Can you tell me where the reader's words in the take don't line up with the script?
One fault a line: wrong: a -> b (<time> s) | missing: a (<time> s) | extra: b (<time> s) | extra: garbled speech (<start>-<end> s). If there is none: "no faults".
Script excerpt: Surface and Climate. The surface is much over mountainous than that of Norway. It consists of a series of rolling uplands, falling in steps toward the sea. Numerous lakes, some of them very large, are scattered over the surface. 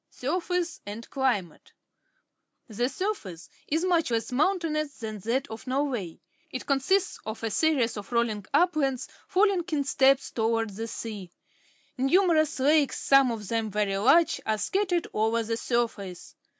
wrong: over -> less (4.1 s)